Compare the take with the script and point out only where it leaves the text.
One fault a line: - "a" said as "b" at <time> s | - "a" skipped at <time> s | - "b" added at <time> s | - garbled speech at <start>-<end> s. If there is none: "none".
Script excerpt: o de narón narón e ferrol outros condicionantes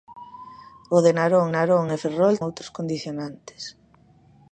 none